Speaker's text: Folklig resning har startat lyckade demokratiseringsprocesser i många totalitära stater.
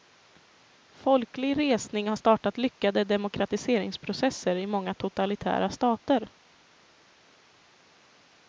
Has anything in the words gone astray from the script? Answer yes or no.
no